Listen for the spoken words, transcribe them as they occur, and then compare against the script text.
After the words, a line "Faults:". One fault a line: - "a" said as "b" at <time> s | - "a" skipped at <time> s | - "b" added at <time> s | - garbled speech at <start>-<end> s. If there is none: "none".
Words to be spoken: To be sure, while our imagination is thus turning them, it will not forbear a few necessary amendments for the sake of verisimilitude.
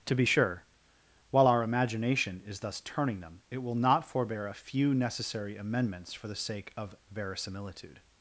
To be sure, while our imagination is thus turning them, it will not forbear a few necessary amendments for the sake of verisimilitude.
Faults:
none